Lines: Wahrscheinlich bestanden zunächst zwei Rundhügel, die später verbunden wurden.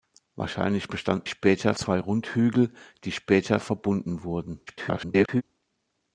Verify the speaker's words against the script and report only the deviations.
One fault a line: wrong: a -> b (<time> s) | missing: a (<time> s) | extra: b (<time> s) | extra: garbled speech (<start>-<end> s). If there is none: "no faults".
wrong: zunächst -> später (1.3 s)
extra: garbled speech (4.7-5.4 s)